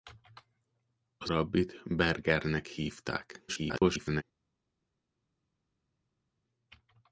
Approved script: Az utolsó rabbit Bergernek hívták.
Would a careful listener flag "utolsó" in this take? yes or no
yes